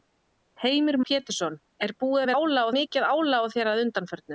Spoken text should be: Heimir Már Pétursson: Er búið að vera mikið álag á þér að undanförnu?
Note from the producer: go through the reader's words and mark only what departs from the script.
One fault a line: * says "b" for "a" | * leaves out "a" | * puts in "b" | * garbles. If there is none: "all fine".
* leaves out "Már"
* says "álag" for "vera"